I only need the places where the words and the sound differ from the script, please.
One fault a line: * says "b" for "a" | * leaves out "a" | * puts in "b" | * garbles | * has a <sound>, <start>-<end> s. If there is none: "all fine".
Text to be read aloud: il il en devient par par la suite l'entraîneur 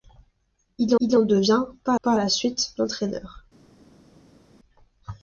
all fine